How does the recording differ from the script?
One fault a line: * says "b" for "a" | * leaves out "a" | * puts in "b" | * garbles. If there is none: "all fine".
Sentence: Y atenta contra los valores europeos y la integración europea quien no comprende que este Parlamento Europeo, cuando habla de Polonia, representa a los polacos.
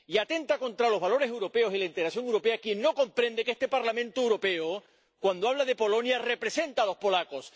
all fine